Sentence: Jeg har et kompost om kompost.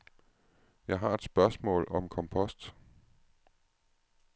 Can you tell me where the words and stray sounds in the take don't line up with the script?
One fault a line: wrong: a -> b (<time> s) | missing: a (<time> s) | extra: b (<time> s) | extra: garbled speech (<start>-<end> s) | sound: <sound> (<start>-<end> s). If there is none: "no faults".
wrong: kompost -> spørgsmål (1.2 s)